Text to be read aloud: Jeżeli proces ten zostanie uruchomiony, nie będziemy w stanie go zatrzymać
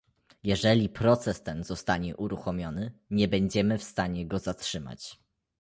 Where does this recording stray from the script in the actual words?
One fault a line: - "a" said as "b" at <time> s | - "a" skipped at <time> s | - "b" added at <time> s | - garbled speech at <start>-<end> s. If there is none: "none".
none